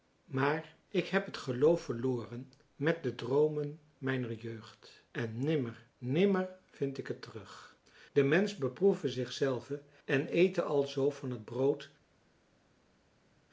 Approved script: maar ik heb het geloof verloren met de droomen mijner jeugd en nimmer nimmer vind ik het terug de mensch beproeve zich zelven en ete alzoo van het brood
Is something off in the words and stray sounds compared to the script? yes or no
no